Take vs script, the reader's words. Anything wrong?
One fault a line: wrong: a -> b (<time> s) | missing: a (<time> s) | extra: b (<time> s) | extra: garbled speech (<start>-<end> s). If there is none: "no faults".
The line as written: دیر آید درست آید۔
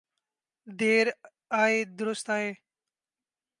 no faults